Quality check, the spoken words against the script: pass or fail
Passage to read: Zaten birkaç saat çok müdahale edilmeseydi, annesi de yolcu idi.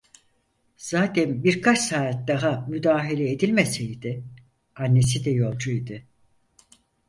fail